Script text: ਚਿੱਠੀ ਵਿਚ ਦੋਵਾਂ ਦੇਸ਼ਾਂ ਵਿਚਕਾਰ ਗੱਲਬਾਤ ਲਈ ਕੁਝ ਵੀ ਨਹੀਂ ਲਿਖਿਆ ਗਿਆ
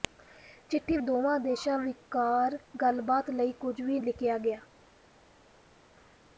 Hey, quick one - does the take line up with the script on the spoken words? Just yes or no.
no